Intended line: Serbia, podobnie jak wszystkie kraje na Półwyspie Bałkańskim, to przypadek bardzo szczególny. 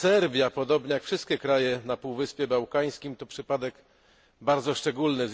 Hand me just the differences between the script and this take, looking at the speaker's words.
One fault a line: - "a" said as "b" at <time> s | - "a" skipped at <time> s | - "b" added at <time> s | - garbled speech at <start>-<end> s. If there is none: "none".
none